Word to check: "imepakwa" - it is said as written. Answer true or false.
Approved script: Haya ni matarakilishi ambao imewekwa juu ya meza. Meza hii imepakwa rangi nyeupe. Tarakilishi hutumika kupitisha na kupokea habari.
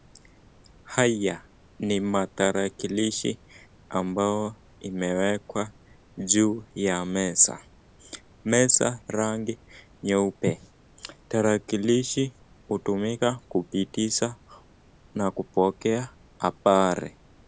false